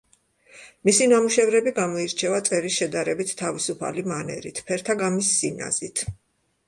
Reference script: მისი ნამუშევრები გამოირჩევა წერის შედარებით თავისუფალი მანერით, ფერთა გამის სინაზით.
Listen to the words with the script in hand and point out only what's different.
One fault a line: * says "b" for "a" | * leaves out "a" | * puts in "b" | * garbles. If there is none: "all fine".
all fine